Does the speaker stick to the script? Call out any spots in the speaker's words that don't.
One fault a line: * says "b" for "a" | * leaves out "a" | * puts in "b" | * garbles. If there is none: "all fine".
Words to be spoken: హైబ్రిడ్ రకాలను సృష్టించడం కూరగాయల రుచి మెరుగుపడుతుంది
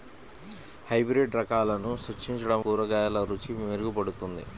all fine